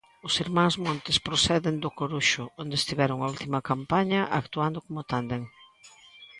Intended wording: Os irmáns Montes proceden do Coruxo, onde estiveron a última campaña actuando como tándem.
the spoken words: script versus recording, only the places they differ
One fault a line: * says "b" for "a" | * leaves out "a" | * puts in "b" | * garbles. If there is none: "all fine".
all fine